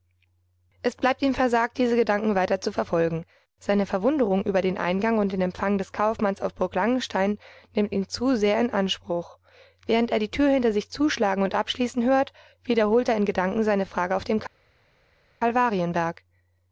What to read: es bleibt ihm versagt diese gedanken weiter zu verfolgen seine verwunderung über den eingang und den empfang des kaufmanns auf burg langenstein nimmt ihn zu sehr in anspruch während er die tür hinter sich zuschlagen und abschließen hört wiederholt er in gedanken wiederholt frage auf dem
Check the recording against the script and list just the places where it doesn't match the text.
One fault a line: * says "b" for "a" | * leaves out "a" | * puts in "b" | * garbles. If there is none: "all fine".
* says "seine" for "wiederholt"